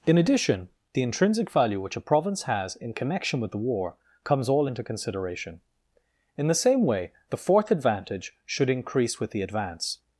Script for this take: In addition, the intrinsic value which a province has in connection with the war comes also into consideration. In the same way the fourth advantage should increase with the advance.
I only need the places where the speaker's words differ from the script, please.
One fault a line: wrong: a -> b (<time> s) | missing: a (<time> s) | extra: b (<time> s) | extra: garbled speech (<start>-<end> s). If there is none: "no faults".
wrong: also -> all (4.5 s)